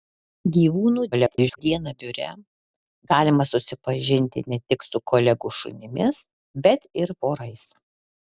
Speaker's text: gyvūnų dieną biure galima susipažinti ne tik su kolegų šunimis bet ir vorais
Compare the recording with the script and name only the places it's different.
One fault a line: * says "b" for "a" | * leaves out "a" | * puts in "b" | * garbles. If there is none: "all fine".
* garbles